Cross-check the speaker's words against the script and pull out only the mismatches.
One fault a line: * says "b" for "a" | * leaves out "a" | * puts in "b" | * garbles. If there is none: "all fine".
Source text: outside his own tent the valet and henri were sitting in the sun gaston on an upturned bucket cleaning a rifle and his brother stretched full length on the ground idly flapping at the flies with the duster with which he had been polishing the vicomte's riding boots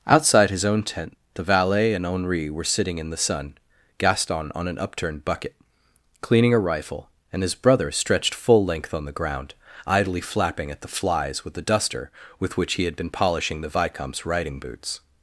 all fine